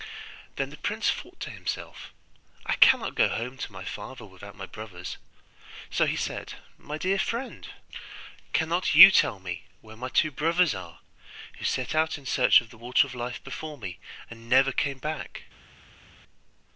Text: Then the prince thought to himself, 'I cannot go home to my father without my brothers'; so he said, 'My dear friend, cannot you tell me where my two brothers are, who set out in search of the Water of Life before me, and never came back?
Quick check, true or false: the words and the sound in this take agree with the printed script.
true